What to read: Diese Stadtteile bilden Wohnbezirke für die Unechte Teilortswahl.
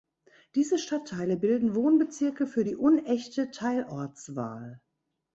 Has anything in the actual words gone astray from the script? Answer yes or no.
no